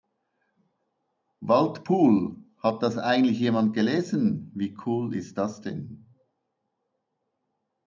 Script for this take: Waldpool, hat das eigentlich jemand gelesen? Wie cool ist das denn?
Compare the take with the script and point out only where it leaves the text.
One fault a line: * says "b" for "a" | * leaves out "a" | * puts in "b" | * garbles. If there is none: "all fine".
all fine